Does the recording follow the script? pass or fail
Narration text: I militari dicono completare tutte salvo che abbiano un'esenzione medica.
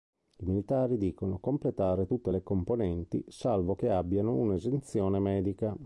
fail